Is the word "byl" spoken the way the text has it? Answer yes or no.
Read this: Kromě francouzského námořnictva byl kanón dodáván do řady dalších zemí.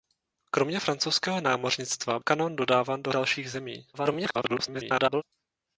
no